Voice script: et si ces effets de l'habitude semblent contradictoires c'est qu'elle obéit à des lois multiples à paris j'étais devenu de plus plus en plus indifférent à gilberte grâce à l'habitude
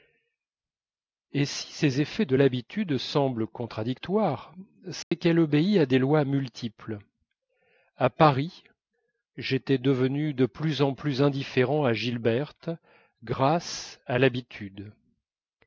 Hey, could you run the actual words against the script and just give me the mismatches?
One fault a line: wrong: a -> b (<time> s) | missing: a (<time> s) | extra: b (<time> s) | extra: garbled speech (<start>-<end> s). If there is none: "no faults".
missing: plus (10.8 s)